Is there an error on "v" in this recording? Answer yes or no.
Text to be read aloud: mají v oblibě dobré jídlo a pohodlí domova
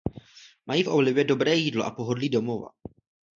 no